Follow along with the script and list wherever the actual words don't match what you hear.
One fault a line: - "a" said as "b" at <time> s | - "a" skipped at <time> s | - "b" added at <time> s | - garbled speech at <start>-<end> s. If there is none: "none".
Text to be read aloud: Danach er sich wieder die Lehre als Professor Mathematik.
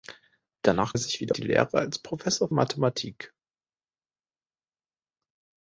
none